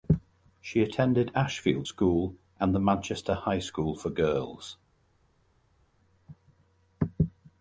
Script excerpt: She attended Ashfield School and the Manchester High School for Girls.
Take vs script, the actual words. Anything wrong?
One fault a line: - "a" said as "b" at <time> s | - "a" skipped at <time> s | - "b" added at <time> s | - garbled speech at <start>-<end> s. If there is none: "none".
none